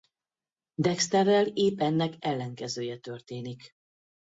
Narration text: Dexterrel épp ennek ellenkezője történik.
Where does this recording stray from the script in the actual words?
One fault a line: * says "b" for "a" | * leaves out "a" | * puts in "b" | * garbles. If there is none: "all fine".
all fine